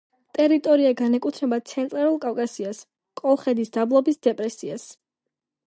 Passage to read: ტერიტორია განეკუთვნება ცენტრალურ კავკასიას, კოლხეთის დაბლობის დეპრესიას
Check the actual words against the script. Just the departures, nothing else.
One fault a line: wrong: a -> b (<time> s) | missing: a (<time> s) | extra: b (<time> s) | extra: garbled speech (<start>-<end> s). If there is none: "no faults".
no faults